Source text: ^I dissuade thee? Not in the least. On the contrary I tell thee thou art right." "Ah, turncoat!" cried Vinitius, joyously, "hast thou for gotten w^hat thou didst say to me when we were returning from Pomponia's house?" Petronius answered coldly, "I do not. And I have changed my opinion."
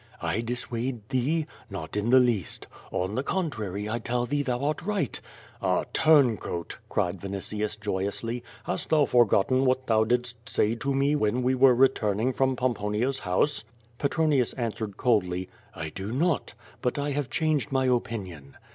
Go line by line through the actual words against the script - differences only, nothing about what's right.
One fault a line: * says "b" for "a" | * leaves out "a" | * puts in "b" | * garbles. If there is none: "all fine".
* says "But" for "And"